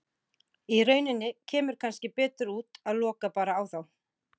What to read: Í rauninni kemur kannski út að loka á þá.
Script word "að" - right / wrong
right